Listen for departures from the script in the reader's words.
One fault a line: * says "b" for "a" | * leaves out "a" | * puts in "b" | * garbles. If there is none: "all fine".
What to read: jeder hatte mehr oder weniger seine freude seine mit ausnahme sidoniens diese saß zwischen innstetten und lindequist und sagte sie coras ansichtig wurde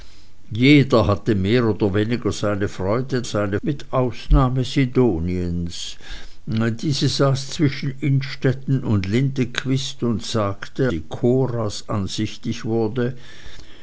all fine